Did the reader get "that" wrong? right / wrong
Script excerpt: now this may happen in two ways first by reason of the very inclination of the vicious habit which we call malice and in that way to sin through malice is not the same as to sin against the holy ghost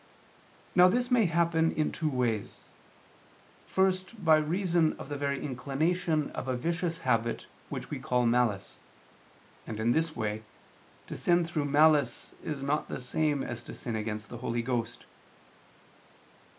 wrong